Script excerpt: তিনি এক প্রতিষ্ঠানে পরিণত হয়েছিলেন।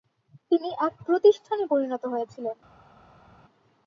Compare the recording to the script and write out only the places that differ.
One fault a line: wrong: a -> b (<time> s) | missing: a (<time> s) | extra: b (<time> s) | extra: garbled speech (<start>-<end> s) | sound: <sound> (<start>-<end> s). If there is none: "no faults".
no faults